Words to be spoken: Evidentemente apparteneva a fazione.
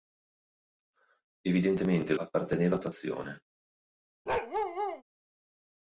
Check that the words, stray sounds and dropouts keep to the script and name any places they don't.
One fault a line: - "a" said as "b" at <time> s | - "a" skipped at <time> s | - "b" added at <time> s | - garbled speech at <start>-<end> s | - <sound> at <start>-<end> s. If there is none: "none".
- bark at 4.3-5.0 s